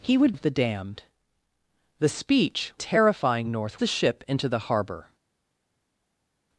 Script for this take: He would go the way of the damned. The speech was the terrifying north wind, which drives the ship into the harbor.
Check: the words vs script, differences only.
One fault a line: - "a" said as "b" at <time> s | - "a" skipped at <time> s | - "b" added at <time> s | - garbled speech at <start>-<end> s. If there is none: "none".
- "go the way" skipped at 0.3 s
- "was the" skipped at 2.7 s
- "wind which drives" skipped at 3.8 s